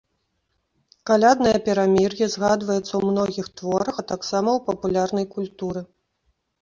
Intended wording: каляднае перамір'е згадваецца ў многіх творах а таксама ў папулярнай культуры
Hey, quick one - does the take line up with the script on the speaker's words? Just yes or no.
yes